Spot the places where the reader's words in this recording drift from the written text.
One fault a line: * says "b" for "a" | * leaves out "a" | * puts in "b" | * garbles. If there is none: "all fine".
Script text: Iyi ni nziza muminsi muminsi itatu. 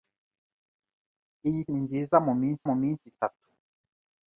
all fine